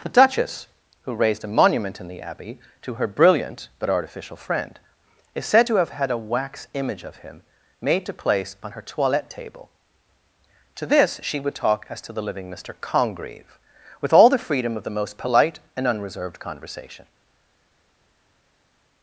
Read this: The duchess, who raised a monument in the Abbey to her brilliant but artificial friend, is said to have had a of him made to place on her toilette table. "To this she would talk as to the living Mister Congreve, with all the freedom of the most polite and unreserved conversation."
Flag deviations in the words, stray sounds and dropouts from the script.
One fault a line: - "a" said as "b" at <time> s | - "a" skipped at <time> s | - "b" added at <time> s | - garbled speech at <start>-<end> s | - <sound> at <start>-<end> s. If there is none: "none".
- "wax image" added at 6.2 s